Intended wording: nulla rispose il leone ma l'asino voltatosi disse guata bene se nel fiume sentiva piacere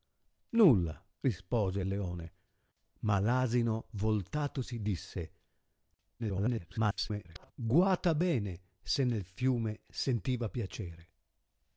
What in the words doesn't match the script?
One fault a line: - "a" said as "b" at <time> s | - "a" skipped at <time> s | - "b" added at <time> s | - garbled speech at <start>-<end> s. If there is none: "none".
- garbled speech at 6.2-7.5 s